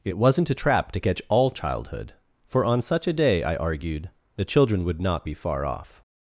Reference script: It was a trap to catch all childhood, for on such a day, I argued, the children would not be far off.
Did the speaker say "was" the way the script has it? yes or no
no